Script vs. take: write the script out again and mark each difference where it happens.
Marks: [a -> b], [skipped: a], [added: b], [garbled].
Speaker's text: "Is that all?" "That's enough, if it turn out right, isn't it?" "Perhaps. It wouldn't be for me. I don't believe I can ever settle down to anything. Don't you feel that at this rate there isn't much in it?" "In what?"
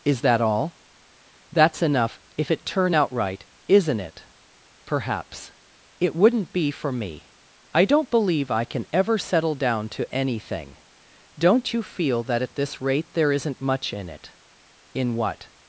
"Is that all?" "That's enough, if it turn out right, isn't it?" "Perhaps. It wouldn't be for me. I don't believe I can ever settle down to anything. Don't you feel that at this rate there isn't much in it?" "In what?"